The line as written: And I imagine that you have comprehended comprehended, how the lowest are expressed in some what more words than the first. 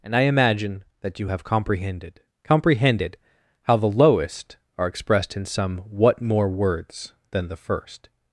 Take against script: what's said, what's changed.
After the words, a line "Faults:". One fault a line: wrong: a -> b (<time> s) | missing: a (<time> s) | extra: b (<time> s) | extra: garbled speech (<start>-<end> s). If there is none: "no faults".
And I imagine that you have comprehended comprehended, how the lowest are expressed in some what more words than the first.
Faults:
no faults